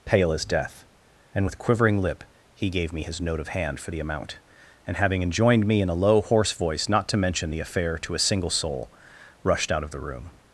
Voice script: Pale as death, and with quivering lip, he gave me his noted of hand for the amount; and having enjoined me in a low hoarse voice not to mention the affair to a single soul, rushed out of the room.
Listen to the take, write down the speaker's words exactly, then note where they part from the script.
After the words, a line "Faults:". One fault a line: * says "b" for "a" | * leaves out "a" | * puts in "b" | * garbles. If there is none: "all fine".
Pale as death, and with quivering lip, he gave me his note of hand for the amount; and having enjoined me in a low hoarse voice not to mention the affair to a single soul, rushed out of the room.
Faults:
* says "note" for "noted"